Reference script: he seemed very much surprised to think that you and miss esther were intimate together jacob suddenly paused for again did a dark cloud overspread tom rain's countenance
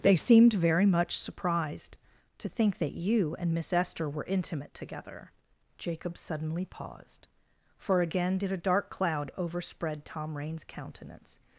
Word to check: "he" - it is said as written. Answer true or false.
false